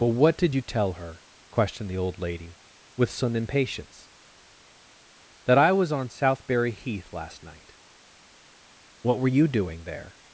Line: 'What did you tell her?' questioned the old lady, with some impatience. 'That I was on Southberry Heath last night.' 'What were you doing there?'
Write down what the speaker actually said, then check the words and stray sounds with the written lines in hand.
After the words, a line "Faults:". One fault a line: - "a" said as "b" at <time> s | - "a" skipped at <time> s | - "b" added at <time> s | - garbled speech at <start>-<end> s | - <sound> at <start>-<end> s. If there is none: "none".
but 'What did you tell her?' questioned the old lady, with some impatience. 'That I was on Southberry Heath last night.' 'What were you doing there?'
Faults:
- "but" added at 0.0 s